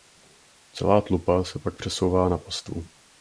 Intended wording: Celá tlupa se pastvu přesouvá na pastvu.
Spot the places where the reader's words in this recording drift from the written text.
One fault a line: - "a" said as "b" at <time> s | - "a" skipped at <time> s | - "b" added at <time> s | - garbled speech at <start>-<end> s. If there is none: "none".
- "pastvu" said as "pak" at 1.6 s